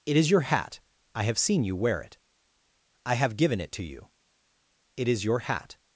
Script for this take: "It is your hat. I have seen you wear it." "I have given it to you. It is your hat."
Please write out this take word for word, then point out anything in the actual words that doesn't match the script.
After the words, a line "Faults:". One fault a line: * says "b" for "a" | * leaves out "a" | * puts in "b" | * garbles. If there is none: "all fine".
"It is your hat. I have seen you wear it." "I have given it to you. It is your hat."
Faults:
all fine